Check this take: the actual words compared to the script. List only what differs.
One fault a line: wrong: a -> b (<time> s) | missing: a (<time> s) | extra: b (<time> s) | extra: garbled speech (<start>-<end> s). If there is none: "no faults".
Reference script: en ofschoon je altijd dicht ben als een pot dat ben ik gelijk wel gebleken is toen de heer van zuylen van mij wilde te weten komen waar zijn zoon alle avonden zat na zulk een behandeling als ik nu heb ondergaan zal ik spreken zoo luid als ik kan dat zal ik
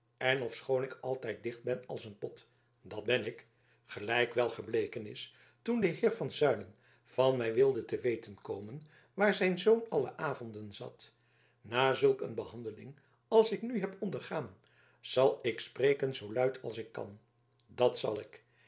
wrong: je -> ik (0.8 s)